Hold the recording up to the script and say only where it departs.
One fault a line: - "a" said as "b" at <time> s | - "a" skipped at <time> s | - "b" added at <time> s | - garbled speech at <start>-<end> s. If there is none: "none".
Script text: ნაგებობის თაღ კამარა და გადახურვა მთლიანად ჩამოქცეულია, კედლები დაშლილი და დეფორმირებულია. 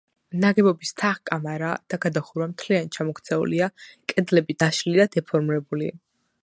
none